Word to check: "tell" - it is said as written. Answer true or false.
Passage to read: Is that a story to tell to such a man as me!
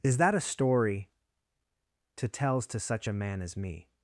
false